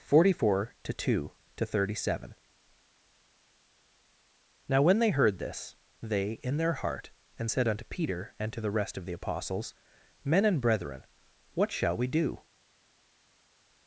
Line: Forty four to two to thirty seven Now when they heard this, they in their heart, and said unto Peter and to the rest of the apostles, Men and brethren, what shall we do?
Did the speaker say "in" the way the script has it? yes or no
yes